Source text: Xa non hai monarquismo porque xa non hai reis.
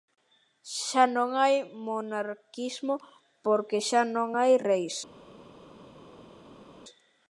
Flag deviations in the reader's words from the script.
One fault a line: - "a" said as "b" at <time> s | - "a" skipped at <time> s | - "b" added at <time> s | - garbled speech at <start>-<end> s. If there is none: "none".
none